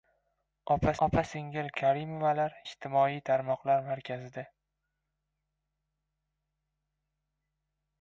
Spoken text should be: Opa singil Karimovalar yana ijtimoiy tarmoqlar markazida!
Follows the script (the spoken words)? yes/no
no